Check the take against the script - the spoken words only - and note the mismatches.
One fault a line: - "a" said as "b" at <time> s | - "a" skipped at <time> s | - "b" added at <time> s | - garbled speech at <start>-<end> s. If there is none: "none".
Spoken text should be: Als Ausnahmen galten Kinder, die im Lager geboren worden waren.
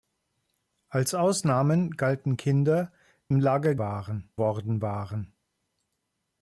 - "die" skipped at 2.9 s
- "geboren" said as "waren" at 3.8 s